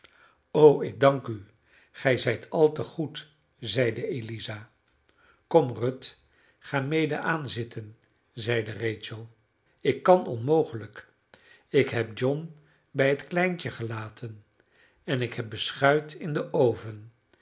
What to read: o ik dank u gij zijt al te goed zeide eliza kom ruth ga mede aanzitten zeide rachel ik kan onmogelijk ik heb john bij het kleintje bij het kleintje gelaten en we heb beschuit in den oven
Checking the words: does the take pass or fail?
fail